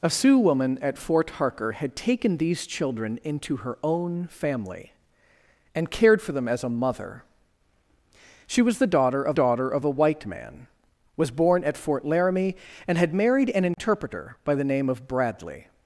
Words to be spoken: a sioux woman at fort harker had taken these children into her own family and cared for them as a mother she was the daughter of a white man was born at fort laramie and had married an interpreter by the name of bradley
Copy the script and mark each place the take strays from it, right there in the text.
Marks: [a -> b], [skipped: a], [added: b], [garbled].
a sioux woman at fort harker had taken these children into her own family and cared for them as a mother she was the daughter of [added: daughter of] a white man was born at fort laramie and had married an interpreter by the name of bradley